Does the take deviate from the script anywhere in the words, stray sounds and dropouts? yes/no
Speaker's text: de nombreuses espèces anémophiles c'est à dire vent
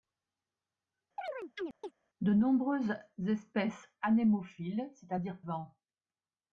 yes